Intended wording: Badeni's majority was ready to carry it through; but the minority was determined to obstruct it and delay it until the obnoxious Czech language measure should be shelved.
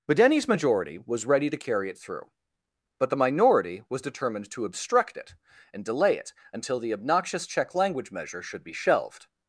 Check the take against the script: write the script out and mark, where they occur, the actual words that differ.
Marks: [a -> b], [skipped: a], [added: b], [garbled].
Badeni's majority was ready to carry it through; but the minority was determined to obstruct it and delay it until the obnoxious Czech language measure should be shelved.